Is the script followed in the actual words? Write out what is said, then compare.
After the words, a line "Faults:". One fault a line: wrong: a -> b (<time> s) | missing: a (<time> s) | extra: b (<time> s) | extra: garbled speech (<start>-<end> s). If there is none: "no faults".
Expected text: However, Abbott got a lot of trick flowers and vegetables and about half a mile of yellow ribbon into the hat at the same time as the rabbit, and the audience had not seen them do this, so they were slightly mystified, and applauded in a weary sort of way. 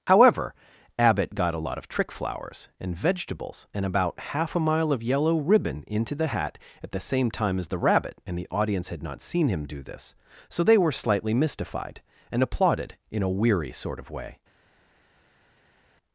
However, Abbott got a lot of trick flowers and vegetables and about half a mile of yellow ribbon into the hat at the same time as the rabbit, and the audience had not seen him do this, so they were slightly mystified, and applauded in a weary sort of way.
Faults:
wrong: them -> him (9.5 s)